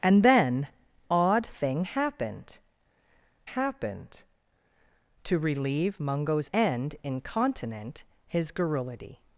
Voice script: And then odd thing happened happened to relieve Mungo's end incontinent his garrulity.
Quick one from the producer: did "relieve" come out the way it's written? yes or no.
yes